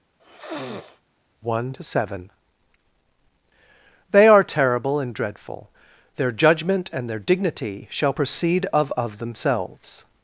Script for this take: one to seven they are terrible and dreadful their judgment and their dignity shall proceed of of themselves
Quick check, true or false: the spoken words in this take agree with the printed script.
true